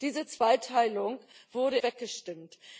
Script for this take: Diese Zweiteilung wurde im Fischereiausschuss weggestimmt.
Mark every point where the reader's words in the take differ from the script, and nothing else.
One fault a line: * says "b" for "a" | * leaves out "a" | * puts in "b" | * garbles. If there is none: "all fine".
* leaves out "im Fischereiausschuss"